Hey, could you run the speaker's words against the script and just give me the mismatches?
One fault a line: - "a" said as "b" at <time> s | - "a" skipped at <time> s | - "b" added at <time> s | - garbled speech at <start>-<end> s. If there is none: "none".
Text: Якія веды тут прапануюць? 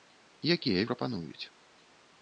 - "веды тут" skipped at 0.8 s